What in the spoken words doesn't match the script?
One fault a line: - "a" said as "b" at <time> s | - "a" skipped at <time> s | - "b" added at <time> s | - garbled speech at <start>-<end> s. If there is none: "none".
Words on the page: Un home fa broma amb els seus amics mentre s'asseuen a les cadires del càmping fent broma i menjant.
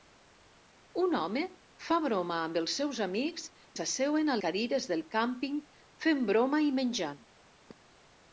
- "mentre" skipped at 3.5 s
- "les" skipped at 4.4 s